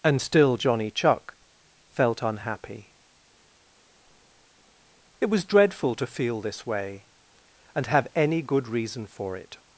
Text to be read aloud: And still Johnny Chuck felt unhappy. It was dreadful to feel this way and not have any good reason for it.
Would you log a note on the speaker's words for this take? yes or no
yes